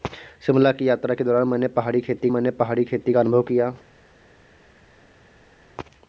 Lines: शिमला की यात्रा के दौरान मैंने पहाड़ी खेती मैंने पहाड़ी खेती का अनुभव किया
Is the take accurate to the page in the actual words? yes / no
yes